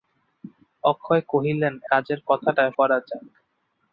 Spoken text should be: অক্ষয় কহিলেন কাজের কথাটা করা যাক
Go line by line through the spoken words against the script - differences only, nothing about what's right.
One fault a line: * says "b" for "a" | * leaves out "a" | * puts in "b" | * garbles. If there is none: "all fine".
all fine